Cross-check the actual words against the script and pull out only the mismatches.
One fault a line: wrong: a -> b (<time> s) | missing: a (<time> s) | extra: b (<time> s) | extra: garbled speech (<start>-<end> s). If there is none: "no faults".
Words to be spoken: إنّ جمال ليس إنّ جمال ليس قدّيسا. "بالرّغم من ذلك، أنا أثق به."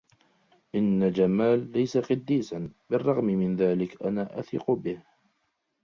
missing: إنّ جمال ليس (2.0 s)